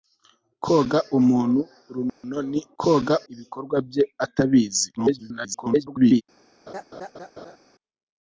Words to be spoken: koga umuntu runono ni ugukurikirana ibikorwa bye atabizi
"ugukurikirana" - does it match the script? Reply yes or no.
no